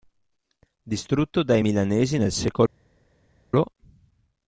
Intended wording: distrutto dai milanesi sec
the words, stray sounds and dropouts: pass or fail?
fail